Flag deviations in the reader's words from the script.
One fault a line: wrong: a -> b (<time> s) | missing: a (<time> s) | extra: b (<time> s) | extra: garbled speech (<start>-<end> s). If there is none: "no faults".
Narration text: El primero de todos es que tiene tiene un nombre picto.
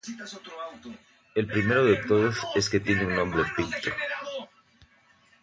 missing: tiene (3.0 s)